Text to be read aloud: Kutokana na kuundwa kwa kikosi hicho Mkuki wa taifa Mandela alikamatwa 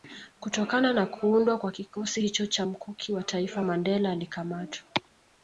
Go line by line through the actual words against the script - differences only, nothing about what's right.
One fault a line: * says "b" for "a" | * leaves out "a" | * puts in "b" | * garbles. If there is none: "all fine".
* puts in "cha"